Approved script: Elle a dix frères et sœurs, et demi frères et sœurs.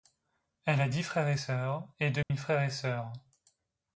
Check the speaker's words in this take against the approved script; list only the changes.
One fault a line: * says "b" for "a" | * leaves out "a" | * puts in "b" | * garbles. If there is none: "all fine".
all fine